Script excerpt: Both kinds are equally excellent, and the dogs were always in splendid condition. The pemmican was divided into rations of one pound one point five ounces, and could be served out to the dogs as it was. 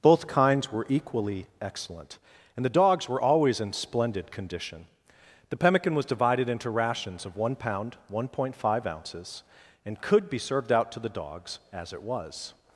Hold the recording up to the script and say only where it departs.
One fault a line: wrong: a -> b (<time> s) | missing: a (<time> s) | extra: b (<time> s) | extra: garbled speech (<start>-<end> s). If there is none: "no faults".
wrong: are -> were (0.7 s)